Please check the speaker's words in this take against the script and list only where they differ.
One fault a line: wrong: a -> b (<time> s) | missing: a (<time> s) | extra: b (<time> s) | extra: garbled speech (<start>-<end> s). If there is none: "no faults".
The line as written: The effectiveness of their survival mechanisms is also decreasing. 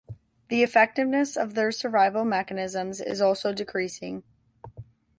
no faults